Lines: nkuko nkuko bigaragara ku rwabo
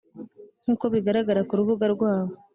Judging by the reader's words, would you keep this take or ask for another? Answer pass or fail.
fail